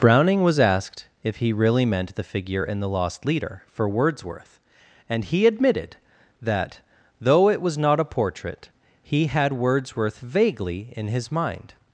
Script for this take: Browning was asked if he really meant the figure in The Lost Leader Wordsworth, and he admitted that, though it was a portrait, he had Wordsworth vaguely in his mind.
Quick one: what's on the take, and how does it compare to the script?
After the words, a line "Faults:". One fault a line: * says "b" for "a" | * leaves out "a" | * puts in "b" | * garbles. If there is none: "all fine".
Browning was asked if he really meant the figure in The Lost Leader for Wordsworth, and he admitted that, though it was not a portrait, he had Wordsworth vaguely in his mind.
Faults:
* puts in "for"
* puts in "not"